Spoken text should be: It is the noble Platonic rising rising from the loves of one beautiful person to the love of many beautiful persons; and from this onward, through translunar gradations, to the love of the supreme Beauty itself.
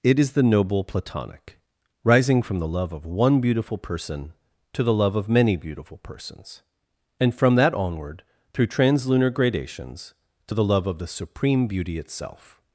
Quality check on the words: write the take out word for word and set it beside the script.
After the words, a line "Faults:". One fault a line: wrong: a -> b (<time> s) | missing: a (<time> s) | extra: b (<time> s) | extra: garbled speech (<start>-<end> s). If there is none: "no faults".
It is the noble Platonic rising from the love of one beautiful person to the love of many beautiful persons; and from that onward, through translunar gradations, to the love of the supreme Beauty itself.
Faults:
missing: rising (2.4 s)
wrong: loves -> love (2.7 s)
wrong: this -> that (7.5 s)